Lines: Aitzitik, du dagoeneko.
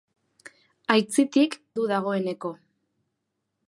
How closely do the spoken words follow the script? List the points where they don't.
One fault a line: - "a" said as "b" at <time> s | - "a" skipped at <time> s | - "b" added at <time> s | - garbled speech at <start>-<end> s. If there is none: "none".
none